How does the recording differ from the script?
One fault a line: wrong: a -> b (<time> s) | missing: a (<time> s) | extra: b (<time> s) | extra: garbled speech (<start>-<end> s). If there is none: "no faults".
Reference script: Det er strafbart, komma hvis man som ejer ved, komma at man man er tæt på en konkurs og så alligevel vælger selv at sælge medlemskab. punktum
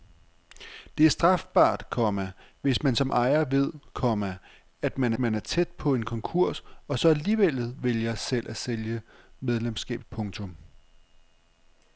no faults